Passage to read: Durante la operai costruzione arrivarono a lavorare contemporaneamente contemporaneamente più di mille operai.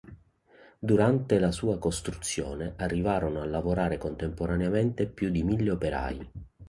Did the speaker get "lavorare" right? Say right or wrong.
right